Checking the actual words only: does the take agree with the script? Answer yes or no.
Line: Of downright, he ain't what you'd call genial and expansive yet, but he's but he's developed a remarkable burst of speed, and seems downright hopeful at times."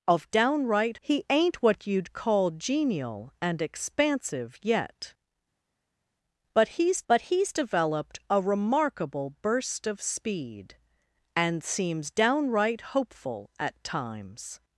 yes